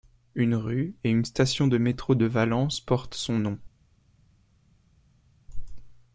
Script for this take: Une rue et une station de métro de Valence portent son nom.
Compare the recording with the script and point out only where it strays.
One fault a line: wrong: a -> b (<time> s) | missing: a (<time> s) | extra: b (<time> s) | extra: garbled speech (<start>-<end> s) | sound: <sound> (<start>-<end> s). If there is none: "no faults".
no faults